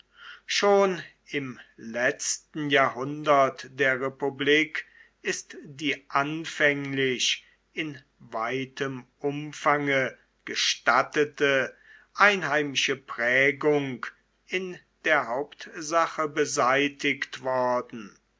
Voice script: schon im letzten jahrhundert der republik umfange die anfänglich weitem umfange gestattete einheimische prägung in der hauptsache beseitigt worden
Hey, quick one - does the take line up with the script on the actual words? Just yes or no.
no